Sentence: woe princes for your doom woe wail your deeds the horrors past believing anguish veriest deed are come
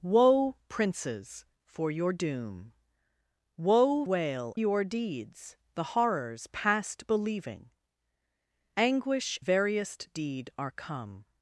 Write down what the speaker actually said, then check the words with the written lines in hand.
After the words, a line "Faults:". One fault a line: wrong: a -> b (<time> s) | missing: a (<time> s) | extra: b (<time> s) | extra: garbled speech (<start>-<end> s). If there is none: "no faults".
woe princes for your doom woe wail your deeds the horrors past believing anguish veriest deed are come
Faults:
no faults